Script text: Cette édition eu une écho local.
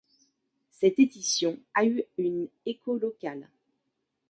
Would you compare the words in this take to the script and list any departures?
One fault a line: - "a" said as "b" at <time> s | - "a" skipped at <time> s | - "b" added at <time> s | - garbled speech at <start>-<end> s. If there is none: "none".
- "a" added at 1.7 s